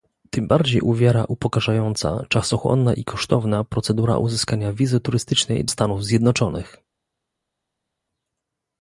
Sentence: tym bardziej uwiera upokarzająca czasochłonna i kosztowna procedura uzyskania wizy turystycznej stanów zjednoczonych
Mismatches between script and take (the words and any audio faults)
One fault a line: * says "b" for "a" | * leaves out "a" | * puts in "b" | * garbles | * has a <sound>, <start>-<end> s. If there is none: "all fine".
all fine